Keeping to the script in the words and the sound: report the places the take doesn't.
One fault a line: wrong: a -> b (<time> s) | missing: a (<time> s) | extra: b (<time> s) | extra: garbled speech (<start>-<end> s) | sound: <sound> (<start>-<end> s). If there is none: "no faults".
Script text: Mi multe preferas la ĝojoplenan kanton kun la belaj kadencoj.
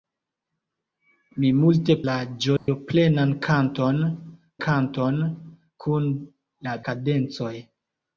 missing: preferas (2.0 s)
sound: dropout (2.6-2.7 s)
extra: kanton (4.7 s)
missing: belaj (6.8 s)